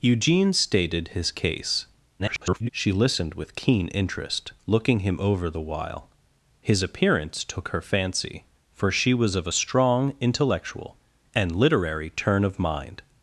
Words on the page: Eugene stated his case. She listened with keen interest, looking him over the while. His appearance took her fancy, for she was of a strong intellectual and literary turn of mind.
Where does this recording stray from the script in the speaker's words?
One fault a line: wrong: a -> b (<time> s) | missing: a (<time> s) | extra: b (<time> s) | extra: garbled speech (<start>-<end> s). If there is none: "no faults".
extra: garbled speech (2.2-2.7 s)